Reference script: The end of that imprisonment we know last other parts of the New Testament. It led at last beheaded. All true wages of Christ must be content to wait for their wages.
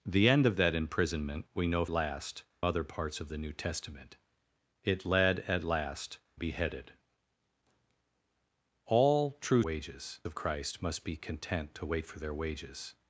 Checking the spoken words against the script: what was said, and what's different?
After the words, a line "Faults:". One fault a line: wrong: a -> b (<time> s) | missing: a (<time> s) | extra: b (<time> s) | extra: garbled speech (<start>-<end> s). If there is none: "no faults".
The end of that imprisonment we know last other parts of the New Testament. It led at last beheaded. All true wages of Christ must be content to wait for their wages.
Faults:
no faults